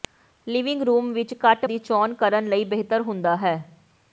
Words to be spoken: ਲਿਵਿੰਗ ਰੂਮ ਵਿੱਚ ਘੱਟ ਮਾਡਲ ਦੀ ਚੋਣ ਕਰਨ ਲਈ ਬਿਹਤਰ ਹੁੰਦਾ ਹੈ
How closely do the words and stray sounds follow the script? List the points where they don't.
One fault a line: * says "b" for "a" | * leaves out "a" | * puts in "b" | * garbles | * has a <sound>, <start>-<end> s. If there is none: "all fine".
* leaves out "ਮਾਡਲ"